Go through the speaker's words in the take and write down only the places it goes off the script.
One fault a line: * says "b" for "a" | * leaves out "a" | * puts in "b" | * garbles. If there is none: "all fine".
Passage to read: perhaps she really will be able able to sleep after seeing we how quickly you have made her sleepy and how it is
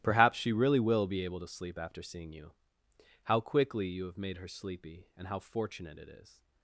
* leaves out "able"
* says "you" for "we"
* puts in "fortunate"